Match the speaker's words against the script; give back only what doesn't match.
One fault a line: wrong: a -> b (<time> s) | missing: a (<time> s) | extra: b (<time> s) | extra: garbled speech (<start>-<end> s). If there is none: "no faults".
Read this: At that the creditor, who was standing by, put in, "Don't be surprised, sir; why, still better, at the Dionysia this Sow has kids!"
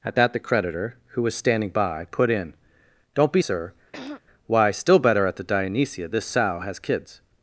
missing: surprised (3.4 s)